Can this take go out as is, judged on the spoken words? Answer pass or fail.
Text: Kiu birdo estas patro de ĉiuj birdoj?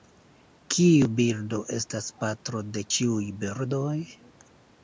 pass